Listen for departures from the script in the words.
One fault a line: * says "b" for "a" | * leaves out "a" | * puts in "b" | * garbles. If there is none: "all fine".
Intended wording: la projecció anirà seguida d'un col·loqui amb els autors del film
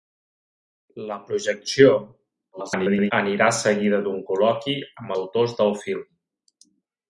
* garbles
* leaves out "els"